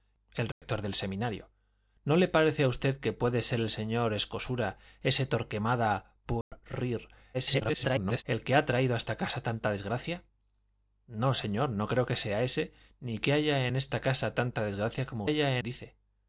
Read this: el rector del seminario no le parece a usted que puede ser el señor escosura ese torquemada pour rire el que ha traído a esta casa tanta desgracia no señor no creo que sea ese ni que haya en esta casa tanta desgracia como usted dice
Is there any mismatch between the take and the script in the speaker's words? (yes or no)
yes